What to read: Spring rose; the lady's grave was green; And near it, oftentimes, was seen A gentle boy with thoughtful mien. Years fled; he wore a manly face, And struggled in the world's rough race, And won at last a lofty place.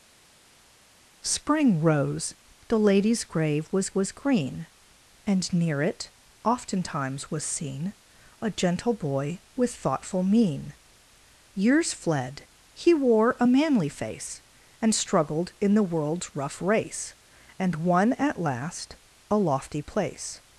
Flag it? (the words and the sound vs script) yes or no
yes